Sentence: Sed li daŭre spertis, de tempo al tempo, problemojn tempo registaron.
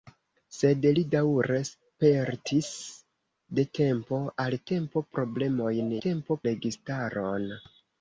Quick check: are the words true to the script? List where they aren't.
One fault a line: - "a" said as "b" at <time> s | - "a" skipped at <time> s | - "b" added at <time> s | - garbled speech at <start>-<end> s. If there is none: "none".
none